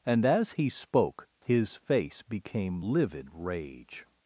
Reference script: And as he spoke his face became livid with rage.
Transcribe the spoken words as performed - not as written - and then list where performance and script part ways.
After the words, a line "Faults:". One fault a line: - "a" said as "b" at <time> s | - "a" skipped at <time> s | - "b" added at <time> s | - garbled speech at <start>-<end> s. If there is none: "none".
And as he spoke his face became livid rage.
Faults:
- "with" skipped at 3.3 s